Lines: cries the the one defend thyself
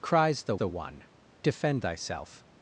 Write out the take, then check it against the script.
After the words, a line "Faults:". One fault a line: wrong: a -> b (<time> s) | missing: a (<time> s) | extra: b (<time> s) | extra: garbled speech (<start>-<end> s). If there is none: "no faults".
cries the the one defend thyself
Faults:
no faults